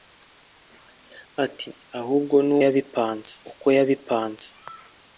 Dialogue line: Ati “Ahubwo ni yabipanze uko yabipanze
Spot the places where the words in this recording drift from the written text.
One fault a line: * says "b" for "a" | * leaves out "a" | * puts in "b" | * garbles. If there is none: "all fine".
all fine